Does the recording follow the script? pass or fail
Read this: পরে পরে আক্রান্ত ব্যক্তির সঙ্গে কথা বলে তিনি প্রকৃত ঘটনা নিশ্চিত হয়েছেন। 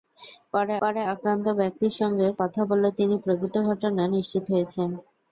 pass